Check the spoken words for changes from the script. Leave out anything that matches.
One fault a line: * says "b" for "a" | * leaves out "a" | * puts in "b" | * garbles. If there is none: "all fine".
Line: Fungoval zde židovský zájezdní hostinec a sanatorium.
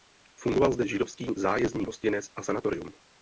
all fine